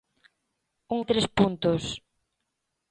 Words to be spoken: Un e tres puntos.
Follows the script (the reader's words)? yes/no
yes